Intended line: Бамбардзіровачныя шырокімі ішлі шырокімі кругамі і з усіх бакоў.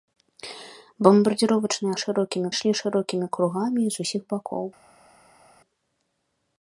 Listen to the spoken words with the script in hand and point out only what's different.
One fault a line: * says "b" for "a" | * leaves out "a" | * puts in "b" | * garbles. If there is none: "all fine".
all fine